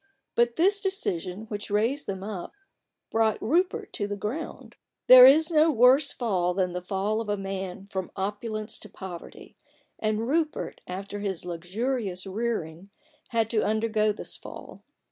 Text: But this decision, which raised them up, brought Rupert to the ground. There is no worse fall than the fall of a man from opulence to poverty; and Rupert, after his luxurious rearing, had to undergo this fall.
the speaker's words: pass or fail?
pass